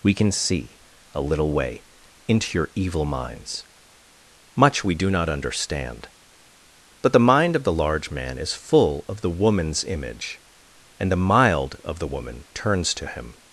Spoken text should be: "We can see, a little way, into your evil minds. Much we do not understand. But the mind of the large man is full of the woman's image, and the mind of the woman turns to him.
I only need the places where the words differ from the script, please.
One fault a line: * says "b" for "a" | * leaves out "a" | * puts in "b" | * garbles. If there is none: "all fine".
* says "mild" for "mind"